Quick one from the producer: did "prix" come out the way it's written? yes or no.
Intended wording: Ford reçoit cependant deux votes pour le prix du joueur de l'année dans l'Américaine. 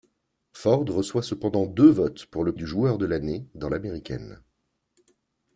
no